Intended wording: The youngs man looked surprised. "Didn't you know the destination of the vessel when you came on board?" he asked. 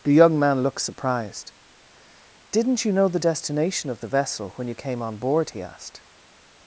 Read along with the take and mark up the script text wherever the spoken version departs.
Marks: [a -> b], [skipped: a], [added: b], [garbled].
The [youngs -> young] man looked surprised. "Didn't you know the destination of the vessel when you came on board?" he asked.